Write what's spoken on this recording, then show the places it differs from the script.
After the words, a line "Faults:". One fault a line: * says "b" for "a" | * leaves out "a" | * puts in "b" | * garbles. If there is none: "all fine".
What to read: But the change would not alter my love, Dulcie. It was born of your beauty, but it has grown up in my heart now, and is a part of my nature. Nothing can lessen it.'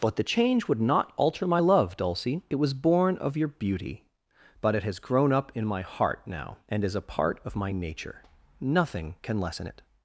But the change would not alter my love, Dulcie. It was born of your beauty, but it has grown up in my heart now, and is a part of my nature. Nothing can lessen it.'
Faults:
all fine